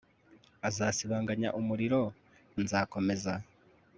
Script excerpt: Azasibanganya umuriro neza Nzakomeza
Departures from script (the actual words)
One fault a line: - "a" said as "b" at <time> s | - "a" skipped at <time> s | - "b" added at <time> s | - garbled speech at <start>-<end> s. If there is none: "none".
- "neza" skipped at 2.0 s